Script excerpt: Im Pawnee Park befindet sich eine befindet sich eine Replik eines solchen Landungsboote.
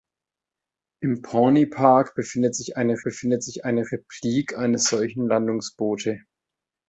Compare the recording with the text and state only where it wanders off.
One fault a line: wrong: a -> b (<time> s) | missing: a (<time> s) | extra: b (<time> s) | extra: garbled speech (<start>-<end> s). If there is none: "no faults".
no faults